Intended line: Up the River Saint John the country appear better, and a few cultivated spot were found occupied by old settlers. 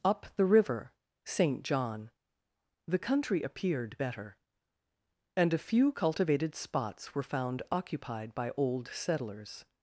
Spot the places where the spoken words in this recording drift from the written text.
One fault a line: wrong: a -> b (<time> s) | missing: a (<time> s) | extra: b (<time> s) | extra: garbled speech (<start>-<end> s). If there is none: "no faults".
wrong: appear -> appeared (3.4 s)
wrong: spot -> spots (6.5 s)